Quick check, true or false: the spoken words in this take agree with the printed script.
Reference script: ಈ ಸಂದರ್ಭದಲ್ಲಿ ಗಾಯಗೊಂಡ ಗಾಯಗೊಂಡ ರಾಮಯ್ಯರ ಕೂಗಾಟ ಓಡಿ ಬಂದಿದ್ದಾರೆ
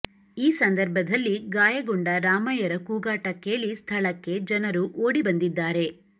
false